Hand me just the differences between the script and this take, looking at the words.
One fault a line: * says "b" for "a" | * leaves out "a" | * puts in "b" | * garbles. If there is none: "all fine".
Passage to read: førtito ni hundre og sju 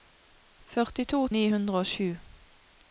all fine